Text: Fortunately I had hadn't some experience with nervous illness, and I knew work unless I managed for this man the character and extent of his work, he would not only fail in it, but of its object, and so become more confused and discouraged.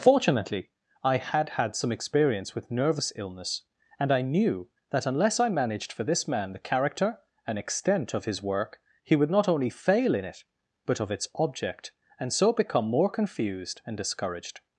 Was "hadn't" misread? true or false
true